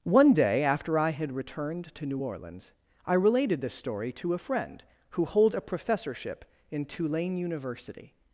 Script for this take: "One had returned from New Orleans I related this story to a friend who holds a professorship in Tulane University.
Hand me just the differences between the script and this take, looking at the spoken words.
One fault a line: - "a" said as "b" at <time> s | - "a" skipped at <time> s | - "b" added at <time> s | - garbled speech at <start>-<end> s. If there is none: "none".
- "day after I" added at 0.3 s
- "from" said as "to" at 1.9 s